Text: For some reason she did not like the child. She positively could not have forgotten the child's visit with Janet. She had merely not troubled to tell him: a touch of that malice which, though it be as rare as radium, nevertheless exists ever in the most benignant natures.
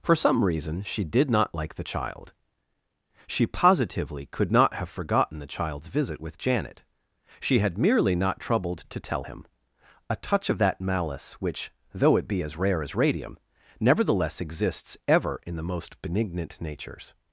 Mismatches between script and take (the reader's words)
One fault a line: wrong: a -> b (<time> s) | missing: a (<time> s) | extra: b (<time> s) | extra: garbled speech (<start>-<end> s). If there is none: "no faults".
no faults